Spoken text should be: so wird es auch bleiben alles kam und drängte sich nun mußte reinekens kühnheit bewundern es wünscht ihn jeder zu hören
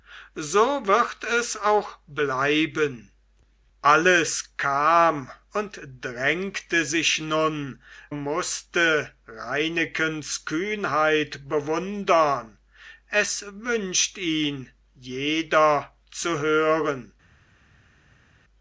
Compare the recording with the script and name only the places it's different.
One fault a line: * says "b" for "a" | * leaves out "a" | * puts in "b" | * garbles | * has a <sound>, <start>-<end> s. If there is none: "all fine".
all fine